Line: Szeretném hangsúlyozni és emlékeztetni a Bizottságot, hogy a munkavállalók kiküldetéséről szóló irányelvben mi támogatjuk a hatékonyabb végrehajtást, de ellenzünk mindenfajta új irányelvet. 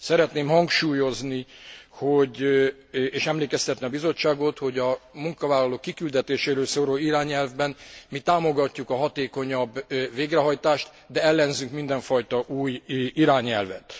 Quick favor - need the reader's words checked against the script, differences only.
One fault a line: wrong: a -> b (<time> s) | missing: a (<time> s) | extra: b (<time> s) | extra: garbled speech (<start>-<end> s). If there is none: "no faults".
no faults